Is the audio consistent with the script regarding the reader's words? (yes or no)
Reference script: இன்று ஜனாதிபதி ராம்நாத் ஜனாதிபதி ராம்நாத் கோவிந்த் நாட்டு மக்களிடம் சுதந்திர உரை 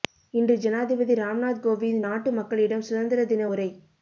no